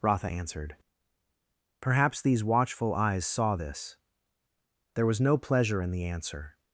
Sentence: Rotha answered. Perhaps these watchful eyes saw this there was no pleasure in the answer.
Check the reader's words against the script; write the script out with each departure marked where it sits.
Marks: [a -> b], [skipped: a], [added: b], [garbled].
Rotha answered. Perhaps these watchful eyes saw this there was no pleasure in the answer.